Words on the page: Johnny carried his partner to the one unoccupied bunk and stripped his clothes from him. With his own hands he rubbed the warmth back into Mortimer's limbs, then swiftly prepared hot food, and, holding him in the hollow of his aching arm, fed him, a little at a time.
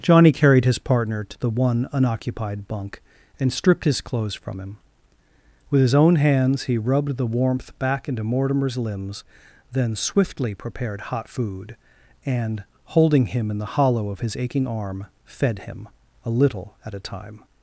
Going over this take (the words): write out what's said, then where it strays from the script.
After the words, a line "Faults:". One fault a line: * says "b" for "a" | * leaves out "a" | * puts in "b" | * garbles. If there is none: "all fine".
Johnny carried his partner to the one unoccupied bunk and stripped his clothes from him. With his own hands he rubbed the warmth back into Mortimer's limbs, then swiftly prepared hot food, and, holding him in the hollow of his aching arm, fed him, a little at a time.
Faults:
all fine